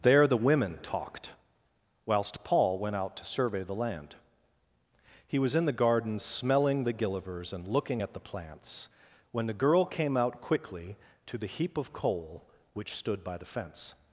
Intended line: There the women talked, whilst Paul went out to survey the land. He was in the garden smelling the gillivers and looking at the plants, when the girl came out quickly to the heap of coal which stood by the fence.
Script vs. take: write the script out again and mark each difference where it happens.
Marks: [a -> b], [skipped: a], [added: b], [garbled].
There the women talked, whilst Paul went out to survey the land. He was in the garden smelling the gillivers and looking at the plants, when the girl came out quickly to the heap of coal which stood by the fence.